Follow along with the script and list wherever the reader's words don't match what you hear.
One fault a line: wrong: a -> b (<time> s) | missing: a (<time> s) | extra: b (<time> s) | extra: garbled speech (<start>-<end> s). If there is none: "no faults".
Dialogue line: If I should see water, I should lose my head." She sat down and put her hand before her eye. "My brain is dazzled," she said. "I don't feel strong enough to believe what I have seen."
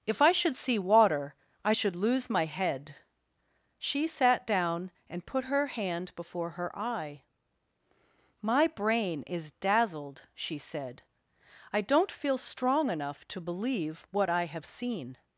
no faults